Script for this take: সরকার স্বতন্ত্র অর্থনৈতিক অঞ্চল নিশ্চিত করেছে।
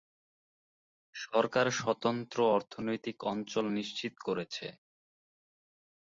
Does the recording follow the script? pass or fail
pass